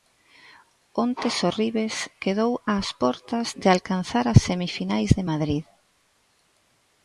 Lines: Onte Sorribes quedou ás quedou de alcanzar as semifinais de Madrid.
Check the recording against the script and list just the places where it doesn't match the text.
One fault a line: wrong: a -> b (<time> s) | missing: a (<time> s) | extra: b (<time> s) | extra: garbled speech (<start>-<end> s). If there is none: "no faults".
wrong: quedou -> portas (3.0 s)